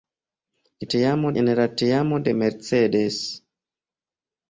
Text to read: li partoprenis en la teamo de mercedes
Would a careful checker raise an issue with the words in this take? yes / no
yes